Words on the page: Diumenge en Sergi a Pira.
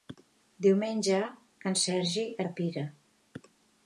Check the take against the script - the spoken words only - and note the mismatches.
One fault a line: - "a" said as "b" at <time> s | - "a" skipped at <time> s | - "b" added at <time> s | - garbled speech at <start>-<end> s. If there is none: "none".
none